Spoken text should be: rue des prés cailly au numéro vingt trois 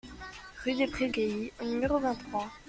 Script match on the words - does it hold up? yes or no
yes